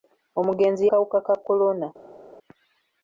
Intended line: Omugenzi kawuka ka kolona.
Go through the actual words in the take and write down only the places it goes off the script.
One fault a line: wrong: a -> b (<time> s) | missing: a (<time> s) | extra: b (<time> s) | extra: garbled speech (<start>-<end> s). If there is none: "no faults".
no faults